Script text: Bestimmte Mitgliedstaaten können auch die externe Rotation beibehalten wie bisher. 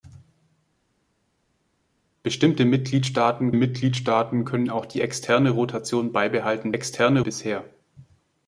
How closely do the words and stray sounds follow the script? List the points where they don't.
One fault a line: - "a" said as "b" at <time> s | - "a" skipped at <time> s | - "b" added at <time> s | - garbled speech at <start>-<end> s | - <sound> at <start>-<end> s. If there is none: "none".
- "Mitgliedstaaten" added at 3.5 s
- "wie" said as "externe" at 6.7 s